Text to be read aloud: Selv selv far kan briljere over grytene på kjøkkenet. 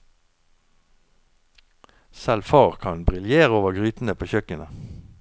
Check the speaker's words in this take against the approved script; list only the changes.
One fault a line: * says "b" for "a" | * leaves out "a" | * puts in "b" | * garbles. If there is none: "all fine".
* leaves out "selv"